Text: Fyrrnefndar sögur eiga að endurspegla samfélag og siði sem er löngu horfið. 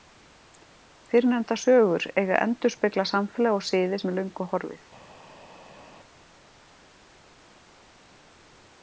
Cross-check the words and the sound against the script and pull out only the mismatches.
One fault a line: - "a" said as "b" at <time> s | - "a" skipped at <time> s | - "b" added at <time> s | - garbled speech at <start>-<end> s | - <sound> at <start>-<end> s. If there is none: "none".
none